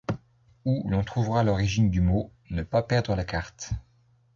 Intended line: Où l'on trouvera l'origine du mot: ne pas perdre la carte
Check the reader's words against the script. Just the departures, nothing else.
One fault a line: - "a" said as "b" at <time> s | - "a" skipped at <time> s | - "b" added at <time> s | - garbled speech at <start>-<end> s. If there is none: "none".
none